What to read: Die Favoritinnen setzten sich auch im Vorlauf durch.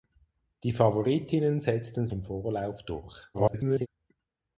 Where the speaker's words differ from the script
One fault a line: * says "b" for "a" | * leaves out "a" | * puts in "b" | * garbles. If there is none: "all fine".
* leaves out "sich auch"
* garbles